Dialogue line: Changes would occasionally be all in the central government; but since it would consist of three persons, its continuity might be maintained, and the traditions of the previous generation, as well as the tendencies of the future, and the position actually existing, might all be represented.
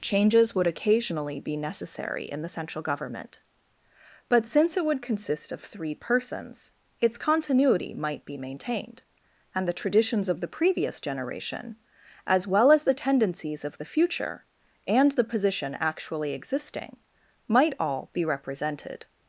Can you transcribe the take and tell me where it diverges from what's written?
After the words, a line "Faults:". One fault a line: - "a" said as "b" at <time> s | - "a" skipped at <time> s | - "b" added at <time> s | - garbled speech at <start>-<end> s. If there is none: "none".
Changes would occasionally be necessary in the central government; but since it would consist of three persons, its continuity might be maintained, and the traditions of the previous generation, as well as the tendencies of the future, and the position actually existing, might all be represented.
Faults:
- "all" said as "necessary" at 1.6 s